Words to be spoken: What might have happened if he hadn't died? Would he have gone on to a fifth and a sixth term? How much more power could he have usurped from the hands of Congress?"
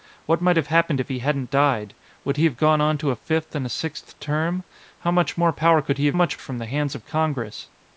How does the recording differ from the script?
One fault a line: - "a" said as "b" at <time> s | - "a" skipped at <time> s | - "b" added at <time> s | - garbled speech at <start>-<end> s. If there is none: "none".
- "usurped" said as "much" at 6.1 s